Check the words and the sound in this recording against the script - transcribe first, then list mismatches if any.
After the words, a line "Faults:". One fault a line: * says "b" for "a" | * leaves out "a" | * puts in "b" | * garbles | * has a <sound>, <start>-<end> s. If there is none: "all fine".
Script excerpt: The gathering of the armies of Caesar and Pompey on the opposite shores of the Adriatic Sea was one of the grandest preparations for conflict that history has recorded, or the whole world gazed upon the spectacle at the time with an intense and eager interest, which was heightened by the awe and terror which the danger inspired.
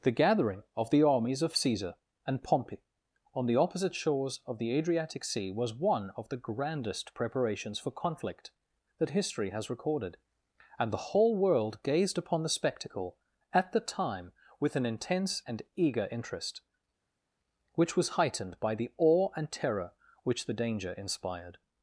The gathering of the armies of Caesar and Pompey on the opposite shores of the Adriatic Sea was one of the grandest preparations for conflict that history has recorded, and the whole world gazed upon the spectacle at the time with an intense and eager interest, which was heightened by the awe and terror which the danger inspired.
Faults:
* says "and" for "or"